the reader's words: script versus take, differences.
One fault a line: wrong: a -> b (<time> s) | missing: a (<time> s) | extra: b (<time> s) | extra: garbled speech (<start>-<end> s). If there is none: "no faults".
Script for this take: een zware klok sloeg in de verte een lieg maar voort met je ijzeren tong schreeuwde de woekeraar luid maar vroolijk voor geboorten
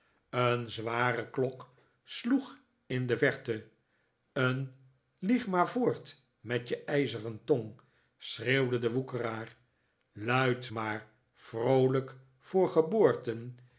no faults